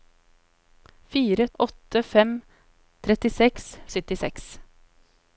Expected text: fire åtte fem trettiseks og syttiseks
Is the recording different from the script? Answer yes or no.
no